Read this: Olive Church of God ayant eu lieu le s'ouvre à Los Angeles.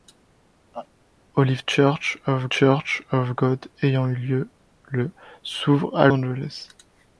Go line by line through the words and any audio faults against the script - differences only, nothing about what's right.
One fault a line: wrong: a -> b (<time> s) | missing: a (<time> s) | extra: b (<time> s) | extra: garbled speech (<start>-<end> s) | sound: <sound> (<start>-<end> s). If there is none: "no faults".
sound: laugh (0.7-0.9 s)
extra: Church of (2.5 s)
missing: Los (6.1 s)